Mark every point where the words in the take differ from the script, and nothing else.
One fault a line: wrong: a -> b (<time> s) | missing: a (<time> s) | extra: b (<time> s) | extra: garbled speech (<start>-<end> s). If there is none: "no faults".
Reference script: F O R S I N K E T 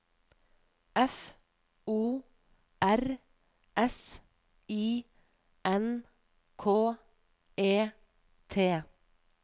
no faults